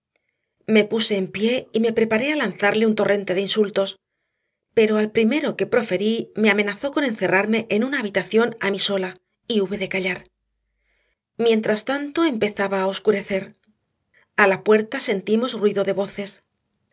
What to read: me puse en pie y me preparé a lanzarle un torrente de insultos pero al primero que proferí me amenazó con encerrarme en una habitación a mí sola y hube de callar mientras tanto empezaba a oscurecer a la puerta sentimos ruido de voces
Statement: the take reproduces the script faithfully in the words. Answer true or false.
true